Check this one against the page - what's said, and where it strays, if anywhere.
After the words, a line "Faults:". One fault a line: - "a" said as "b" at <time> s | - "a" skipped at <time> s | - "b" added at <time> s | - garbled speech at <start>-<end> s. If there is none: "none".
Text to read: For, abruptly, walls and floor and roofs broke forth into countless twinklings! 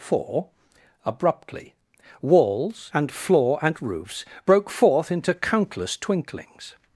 For, abruptly, walls and floor and roofs broke forth into countless twinklings!
Faults:
none